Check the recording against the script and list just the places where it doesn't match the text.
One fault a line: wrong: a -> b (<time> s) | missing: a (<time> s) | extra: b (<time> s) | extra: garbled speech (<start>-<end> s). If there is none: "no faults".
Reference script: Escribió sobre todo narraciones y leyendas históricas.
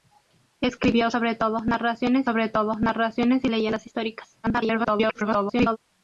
extra: sobre todo narraciones (2.2 s)
extra: garbled speech (4.4-5.8 s)